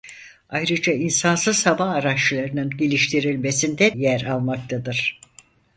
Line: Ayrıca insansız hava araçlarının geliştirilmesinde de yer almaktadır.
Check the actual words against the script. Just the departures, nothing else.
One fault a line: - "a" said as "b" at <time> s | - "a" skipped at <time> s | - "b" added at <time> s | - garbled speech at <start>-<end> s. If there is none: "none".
- "de" skipped at 4.0 s